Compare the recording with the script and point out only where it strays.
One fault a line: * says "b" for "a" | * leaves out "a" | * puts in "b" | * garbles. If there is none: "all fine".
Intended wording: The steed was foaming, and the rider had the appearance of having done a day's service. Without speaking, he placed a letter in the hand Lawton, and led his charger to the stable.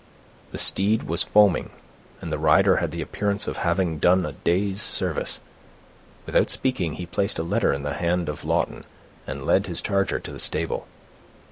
* puts in "of"